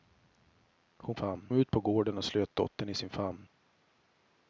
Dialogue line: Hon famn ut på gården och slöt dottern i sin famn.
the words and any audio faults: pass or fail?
pass